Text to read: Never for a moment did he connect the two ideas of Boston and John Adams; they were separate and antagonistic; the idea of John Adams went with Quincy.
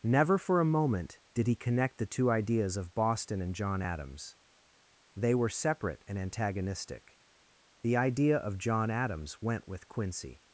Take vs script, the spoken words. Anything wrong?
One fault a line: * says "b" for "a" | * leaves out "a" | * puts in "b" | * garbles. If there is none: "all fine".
all fine